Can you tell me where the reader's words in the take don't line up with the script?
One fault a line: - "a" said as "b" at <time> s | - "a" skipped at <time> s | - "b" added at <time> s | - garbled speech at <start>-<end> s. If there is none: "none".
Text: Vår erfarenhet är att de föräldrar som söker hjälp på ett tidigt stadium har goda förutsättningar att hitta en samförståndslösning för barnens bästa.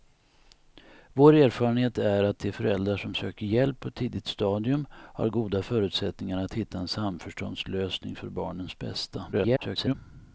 - garbled speech at 9.3-9.9 s